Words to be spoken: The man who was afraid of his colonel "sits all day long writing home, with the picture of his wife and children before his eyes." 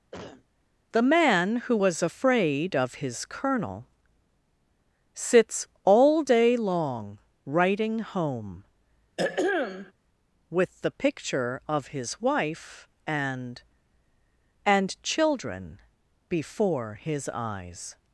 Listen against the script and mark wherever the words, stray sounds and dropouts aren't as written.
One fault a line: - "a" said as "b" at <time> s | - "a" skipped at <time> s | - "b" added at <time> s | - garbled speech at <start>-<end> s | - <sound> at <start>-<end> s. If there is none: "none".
- cough at 0.1-0.5 s
- throat clearing at 9.2-9.9 s
- "and" added at 14.6 s